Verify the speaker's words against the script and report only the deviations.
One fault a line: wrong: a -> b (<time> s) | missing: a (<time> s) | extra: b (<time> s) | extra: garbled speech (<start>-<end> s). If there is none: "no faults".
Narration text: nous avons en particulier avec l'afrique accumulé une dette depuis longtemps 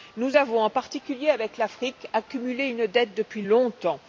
no faults